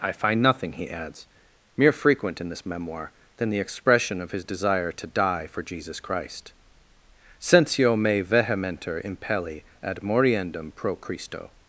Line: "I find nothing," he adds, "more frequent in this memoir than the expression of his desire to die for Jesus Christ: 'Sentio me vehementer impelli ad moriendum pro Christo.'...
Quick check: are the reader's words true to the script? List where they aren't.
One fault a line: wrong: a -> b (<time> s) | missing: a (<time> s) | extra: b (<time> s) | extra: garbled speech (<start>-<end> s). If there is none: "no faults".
wrong: more -> mere (1.8 s)